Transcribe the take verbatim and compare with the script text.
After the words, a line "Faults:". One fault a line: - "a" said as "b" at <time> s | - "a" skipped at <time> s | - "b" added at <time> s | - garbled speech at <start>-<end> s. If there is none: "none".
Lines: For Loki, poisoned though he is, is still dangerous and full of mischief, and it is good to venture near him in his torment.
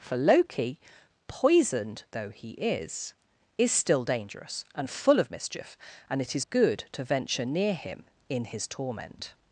For Loki, poisoned though he is, is still dangerous and full of mischief, and it is good to venture near him in his torment.
Faults:
none